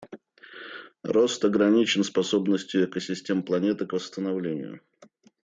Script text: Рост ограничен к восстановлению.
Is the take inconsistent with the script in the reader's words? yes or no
yes